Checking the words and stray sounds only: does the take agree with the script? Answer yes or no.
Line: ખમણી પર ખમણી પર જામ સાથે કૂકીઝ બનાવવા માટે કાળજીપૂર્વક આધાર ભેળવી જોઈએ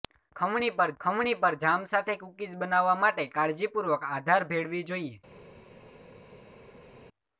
yes